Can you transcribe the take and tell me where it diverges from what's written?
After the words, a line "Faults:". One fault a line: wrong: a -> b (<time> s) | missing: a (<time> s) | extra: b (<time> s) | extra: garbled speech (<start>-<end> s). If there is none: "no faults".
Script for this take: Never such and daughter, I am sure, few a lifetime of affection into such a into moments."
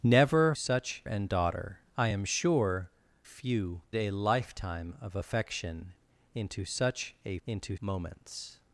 Never such and daughter, I am sure, few a lifetime of affection into such a into moments."
Faults:
no faults